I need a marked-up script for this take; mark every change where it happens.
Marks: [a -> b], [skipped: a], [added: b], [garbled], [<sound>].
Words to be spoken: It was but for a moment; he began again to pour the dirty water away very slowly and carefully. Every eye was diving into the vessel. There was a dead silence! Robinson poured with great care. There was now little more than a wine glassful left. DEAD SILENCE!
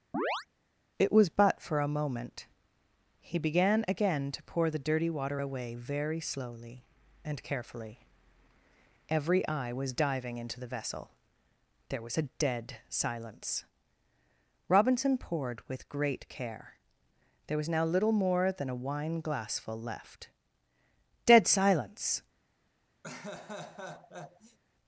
[chirp] It was but for a moment; he began again to pour the dirty water away very slowly and carefully. Every eye was diving into the vessel. There was a dead silence! Robinson poured with great care. There was now little more than a wine glassful left. DEAD SILENCE! [laugh]